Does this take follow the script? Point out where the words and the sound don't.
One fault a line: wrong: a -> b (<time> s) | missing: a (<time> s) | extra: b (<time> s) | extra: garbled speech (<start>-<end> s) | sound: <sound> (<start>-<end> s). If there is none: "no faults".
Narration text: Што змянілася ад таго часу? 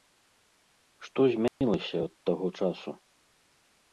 sound: dropout (1.5-1.6 s)